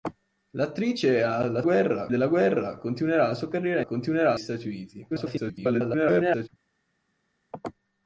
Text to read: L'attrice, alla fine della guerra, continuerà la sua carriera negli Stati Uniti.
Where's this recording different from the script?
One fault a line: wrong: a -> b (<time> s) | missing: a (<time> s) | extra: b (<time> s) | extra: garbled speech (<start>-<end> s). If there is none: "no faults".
wrong: fine -> guerra (1.6 s)
wrong: negli -> continuerà (3.8 s)
extra: garbled speech (5.1-6.5 s)